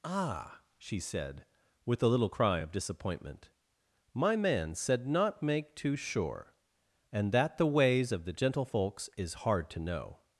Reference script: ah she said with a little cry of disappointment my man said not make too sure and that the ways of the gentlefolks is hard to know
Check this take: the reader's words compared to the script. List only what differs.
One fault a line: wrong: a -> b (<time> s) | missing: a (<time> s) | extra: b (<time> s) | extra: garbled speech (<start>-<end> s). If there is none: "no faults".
no faults